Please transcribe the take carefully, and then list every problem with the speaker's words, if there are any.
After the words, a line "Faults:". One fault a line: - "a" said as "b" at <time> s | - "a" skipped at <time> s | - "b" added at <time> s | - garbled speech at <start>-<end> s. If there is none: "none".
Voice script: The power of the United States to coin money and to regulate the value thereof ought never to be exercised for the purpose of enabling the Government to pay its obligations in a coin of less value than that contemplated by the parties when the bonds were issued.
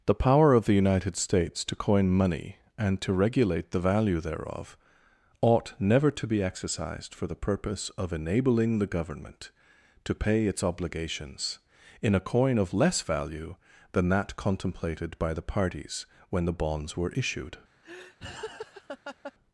The power of the United States to coin money and to regulate the value thereof ought never to be exercised for the purpose of enabling the Government to pay its obligations in a coin of less value than that contemplated by the parties when the bonds were issued.
Faults:
none